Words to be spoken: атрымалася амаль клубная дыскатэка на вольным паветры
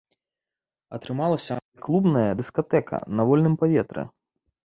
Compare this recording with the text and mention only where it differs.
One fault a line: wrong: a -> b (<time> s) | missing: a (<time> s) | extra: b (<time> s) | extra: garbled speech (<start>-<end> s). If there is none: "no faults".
no faults